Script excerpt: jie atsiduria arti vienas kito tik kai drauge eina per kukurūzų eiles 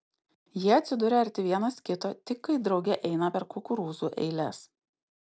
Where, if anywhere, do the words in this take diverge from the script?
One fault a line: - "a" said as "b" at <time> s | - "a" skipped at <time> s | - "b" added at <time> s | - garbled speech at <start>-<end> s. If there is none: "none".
none